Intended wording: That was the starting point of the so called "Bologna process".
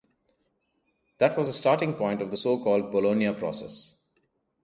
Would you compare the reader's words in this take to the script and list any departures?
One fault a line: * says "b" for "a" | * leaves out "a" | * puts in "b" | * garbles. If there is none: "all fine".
all fine